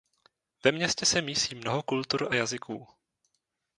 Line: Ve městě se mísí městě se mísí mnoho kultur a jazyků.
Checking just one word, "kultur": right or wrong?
right